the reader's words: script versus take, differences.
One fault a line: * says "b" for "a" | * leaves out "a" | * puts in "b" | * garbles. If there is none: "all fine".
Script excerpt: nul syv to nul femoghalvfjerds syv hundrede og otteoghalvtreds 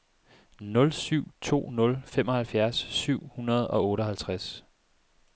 all fine